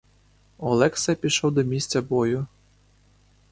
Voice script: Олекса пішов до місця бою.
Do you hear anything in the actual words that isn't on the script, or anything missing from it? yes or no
no